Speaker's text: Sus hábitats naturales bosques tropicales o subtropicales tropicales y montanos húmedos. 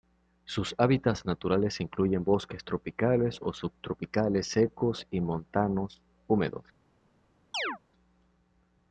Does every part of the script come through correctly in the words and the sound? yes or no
no